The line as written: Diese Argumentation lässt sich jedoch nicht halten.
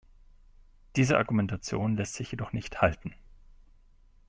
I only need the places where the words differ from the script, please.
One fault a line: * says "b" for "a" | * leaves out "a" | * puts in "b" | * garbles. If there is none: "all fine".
all fine